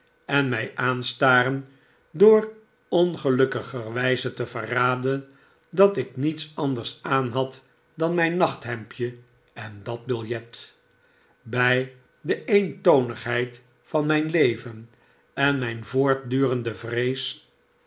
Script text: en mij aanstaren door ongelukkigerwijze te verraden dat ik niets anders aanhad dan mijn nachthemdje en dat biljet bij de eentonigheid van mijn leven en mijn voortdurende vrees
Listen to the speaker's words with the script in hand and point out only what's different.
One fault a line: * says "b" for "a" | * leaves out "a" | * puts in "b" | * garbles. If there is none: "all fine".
all fine